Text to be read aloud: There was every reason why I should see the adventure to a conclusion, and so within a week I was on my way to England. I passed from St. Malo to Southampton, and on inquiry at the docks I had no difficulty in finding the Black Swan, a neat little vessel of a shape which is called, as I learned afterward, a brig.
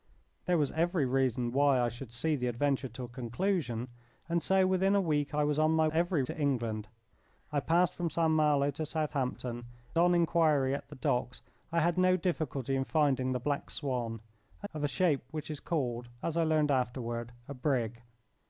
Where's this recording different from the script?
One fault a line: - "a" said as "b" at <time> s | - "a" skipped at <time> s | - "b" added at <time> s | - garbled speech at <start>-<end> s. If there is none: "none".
- "way" said as "every" at 5.9 s
- "and" skipped at 9.7 s
- "neat little vessel" skipped at 14.7 s